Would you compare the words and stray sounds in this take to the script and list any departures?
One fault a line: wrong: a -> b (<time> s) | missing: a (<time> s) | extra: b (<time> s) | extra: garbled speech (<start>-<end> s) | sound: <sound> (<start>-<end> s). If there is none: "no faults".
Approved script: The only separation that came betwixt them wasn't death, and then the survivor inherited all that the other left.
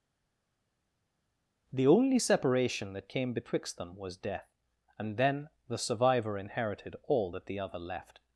wrong: wasn't -> was (4.0 s)